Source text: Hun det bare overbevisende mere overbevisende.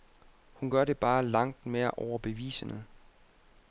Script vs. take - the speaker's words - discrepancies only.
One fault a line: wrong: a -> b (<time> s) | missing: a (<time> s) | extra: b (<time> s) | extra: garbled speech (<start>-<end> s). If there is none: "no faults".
extra: gør (0.7 s)
wrong: overbevisende -> langt (1.2 s)